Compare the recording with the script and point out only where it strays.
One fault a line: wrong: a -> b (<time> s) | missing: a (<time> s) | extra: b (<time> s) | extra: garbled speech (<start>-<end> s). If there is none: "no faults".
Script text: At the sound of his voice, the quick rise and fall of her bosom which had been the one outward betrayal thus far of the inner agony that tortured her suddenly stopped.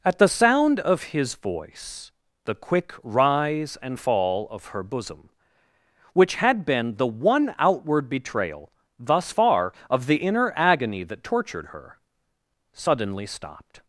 no faults